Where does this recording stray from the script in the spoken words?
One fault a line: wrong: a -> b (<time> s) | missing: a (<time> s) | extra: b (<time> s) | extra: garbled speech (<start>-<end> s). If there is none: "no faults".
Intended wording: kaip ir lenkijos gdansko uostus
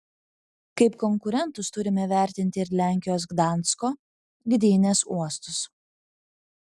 extra: konkurentus turime vertinti (1.0 s)
extra: gdynės (4.5 s)